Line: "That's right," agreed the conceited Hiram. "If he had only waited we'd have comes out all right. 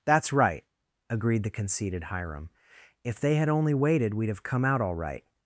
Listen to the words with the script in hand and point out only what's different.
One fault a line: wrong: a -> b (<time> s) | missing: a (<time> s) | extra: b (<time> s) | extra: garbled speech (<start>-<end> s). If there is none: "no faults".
wrong: he -> they (3.2 s)
wrong: comes -> come (4.4 s)